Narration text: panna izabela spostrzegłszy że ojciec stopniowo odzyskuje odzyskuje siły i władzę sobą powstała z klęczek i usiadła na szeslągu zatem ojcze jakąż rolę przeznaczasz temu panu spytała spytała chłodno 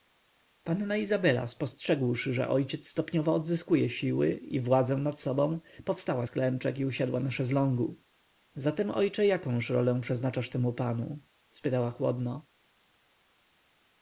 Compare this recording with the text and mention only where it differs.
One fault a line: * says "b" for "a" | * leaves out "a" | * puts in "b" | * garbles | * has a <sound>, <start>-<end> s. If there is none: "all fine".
* leaves out "odzyskuje"
* puts in "nad"
* leaves out "spytała"